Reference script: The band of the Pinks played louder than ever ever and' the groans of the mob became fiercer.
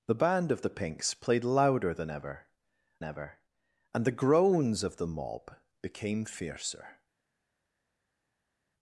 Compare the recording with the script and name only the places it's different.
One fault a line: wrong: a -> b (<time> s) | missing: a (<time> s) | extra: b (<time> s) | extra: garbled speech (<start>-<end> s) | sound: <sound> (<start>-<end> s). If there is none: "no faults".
no faults